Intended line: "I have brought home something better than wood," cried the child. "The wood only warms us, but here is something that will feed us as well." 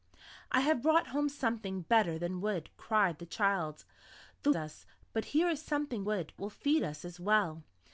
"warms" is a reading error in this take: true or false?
true